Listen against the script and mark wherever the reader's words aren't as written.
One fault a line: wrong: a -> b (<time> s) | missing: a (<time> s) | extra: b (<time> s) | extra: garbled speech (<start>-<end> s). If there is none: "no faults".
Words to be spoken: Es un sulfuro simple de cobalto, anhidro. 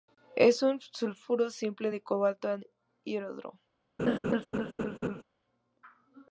no faults